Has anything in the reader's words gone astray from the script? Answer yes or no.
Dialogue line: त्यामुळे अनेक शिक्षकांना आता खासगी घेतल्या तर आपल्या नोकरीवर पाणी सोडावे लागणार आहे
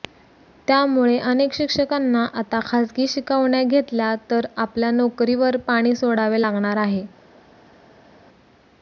yes